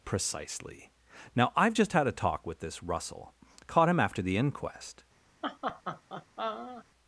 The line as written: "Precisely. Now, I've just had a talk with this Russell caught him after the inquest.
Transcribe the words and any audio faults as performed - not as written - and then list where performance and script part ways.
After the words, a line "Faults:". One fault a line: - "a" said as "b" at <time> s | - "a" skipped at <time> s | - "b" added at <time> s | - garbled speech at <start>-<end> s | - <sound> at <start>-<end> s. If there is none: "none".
"Precisely. Now, I've just had a talk with this Russell caught him after the inquest.
Faults:
- laugh at 5.4-6.9 s